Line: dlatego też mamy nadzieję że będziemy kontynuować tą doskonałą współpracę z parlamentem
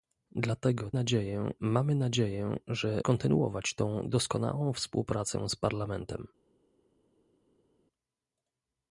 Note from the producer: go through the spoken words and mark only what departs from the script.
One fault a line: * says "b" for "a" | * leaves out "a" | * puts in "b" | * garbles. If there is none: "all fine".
* says "nadzieję" for "też"
* leaves out "będziemy"